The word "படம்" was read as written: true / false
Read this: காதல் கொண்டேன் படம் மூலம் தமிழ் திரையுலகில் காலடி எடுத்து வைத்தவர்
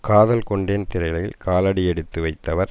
false